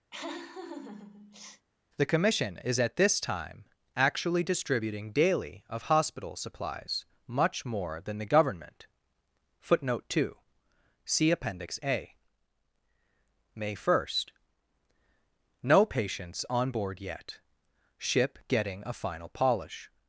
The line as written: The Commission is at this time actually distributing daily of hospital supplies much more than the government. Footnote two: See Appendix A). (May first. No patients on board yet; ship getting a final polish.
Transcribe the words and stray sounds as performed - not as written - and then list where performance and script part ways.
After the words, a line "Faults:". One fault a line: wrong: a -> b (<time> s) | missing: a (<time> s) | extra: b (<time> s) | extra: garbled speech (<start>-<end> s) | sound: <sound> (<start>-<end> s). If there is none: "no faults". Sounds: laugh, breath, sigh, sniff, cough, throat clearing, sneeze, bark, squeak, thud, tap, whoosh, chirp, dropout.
The Commission is at this time actually distributing daily of hospital supplies much more than the government. Footnote two: See Appendix A). (May first. No patients on board yet; ship getting a final polish.
Faults:
sound: laugh (0.1-1.7 s)